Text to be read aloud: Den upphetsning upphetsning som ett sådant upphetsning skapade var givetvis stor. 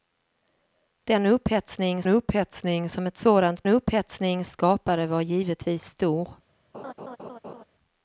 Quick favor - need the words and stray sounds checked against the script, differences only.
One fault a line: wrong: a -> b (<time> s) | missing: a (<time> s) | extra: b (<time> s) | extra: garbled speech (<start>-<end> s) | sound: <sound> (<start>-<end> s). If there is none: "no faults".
sound: laugh (6.7-7.6 s)